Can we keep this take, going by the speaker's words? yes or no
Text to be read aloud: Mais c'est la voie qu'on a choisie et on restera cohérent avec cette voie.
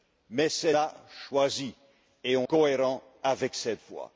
no